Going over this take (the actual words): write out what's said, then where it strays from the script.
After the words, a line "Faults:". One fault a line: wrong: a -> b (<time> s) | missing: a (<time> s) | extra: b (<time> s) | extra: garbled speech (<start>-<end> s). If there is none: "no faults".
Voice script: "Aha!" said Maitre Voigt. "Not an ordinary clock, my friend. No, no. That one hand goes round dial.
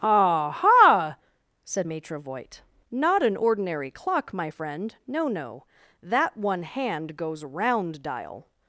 "Aha!" said Maitre Voigt. "Not an ordinary clock, my friend. No, no. That one hand goes round dial.
Faults:
no faults